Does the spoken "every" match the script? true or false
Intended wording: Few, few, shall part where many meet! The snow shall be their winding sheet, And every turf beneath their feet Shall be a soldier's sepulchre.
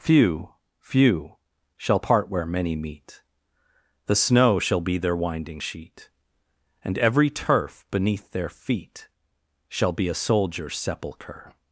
true